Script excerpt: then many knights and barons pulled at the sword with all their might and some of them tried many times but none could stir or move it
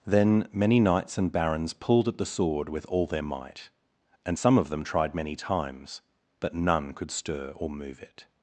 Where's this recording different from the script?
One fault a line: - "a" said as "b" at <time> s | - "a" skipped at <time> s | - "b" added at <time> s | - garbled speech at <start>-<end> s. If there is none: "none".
none